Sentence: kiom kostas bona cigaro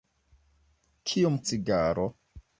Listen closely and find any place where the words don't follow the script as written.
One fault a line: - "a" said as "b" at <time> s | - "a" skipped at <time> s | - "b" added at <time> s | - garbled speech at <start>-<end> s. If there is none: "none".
- "kostas bona" skipped at 1.4 s